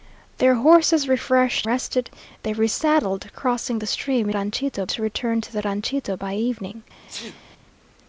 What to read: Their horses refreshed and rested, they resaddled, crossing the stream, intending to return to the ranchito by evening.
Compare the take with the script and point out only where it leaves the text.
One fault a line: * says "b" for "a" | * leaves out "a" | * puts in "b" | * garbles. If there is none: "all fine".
* leaves out "and"
* says "ranchito" for "intending"